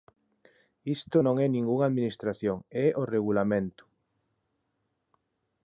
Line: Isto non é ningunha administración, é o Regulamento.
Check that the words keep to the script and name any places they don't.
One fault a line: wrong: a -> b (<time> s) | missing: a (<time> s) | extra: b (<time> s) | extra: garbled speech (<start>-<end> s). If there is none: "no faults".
no faults